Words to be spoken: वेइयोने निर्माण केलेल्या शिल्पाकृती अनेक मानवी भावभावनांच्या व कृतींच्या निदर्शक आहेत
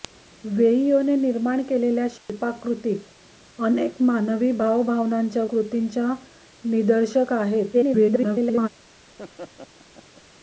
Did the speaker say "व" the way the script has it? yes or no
no